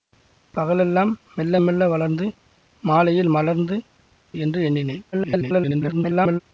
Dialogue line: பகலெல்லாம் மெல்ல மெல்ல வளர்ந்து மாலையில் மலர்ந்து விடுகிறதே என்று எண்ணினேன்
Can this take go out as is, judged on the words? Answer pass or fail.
fail